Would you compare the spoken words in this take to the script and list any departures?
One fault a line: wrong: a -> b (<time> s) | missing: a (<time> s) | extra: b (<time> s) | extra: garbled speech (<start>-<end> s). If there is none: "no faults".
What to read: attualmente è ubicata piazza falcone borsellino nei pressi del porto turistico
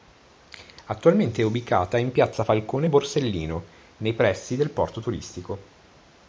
extra: in (2.0 s)